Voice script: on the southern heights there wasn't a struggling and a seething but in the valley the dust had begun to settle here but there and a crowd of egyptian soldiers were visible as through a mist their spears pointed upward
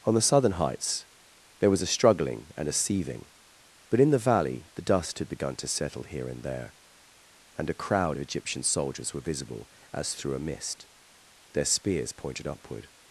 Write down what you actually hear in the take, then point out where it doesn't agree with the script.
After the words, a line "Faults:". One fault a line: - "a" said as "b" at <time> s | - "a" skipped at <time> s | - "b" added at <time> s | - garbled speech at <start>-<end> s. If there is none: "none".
on the southern heights there was a struggling and a seething but in the valley the dust had begun to settle here and there and a crowd of egyptian soldiers were visible as through a mist their spears pointed upward
Faults:
- "wasn't" said as "was" at 1.7 s
- "but" said as "and" at 6.3 s